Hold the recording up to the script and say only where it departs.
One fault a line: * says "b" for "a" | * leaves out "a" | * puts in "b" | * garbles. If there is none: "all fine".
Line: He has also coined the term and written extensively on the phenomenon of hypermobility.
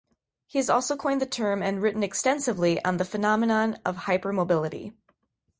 all fine